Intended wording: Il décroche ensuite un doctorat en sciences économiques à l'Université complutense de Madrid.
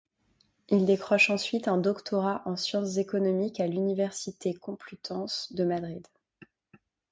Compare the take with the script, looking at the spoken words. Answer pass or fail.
pass